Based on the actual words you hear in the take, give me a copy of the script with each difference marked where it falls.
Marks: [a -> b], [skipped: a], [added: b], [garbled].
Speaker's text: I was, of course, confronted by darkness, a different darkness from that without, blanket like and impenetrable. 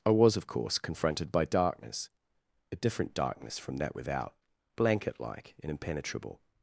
I was, of course, confronted by darkness, a different darkness from that without, blanket like and impenetrable.